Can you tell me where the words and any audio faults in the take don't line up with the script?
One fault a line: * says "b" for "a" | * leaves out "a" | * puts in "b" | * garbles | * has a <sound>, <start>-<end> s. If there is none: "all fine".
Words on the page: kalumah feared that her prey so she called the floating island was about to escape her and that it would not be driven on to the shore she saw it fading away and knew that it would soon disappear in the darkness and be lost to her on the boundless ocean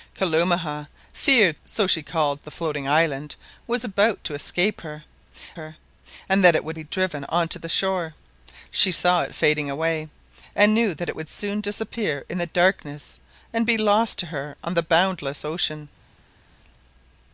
* leaves out "that her prey"
* puts in "her"
* leaves out "not"